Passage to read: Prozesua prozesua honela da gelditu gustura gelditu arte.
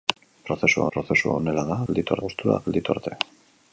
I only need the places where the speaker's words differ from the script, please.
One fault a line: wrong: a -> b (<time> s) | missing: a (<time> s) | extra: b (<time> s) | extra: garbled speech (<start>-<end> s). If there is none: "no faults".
no faults